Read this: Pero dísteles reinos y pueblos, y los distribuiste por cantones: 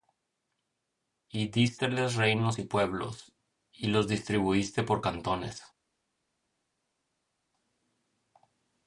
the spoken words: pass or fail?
fail